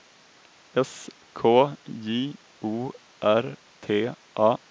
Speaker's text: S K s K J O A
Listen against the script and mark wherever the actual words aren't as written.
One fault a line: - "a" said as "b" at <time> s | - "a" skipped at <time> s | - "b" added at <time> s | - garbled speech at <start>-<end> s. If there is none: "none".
- "s K J O" said as "J O R T" at 1.9 s